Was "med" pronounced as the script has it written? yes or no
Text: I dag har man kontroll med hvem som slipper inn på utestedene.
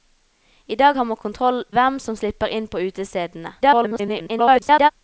no